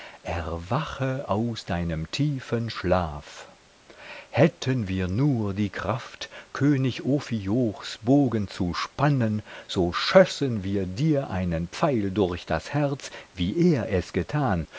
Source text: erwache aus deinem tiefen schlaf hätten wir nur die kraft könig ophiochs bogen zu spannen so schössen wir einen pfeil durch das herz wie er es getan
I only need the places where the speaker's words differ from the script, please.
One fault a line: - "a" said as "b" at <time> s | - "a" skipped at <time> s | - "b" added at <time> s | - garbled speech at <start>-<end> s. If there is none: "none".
- "dir" added at 10.9 s